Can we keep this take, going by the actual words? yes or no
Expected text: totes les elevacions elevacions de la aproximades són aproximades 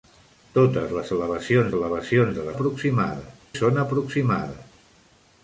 yes